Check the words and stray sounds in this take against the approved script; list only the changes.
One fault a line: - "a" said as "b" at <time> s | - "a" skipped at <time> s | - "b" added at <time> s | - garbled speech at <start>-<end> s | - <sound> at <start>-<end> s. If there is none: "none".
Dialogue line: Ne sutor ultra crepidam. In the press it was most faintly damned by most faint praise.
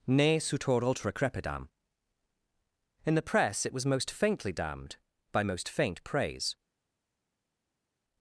none